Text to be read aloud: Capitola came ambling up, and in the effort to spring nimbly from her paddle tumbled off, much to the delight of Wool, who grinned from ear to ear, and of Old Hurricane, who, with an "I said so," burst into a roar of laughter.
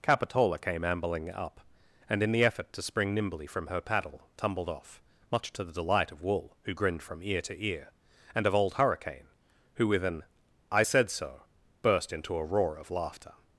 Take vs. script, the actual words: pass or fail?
pass